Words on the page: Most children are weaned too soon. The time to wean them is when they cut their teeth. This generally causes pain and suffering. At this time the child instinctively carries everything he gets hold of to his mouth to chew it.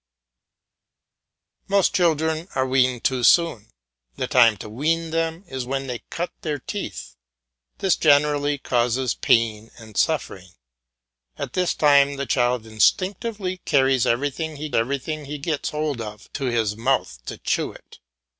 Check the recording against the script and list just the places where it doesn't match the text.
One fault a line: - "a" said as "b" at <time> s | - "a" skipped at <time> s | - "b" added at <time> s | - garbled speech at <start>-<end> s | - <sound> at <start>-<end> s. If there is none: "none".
- "everything he" added at 14.7 s